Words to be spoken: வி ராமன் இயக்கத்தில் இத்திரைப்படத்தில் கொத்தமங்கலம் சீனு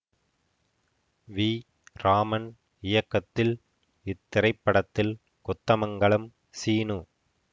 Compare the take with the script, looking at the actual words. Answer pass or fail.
pass